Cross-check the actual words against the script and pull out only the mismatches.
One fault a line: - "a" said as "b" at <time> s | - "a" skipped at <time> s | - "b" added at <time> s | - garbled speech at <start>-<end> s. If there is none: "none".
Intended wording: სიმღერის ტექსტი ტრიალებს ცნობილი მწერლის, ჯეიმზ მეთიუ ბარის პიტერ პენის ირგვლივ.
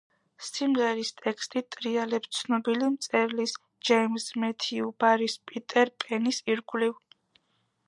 none